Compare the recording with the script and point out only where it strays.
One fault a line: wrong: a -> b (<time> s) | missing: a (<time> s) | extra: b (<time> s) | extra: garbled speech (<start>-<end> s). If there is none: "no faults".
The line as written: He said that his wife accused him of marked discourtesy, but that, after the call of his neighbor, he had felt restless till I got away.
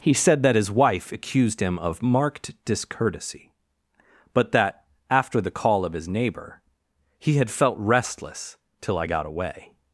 no faults